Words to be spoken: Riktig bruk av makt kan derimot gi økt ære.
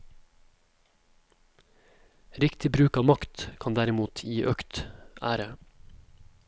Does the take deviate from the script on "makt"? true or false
false